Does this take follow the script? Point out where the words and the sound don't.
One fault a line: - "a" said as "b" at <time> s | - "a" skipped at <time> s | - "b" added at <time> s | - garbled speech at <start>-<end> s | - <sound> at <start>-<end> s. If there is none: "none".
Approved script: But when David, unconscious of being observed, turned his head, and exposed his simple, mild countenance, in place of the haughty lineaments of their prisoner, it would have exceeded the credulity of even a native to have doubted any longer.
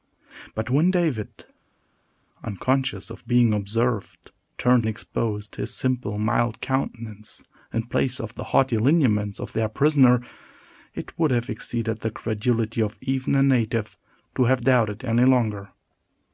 - "his head and" skipped at 4.8 s